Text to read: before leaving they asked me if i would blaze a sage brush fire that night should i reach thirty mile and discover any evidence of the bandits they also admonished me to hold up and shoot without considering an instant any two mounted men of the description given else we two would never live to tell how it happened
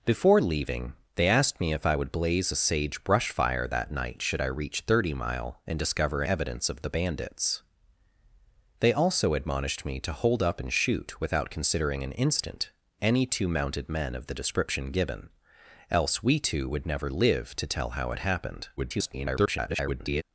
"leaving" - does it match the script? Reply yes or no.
yes